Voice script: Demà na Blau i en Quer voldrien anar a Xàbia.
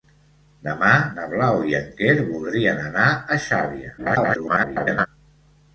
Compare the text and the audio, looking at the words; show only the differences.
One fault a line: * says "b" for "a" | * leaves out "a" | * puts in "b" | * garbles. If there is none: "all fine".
* garbles